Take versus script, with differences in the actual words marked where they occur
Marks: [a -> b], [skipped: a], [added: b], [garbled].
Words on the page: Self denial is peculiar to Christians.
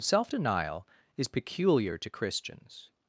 Self denial is peculiar to Christians.